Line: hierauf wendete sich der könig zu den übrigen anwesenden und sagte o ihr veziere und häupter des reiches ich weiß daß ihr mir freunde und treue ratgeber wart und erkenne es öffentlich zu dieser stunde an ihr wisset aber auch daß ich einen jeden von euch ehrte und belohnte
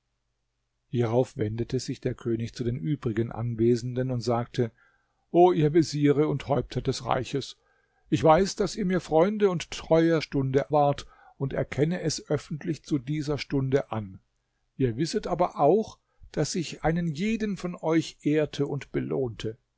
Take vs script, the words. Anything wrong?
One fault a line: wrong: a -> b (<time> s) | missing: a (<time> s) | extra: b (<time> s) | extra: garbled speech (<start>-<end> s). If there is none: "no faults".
wrong: ratgeber -> stunde (10.2 s)